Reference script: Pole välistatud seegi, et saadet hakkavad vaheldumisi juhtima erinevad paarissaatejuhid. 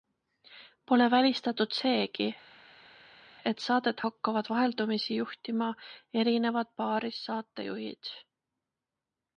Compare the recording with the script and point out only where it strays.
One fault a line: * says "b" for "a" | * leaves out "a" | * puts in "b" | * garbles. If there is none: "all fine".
all fine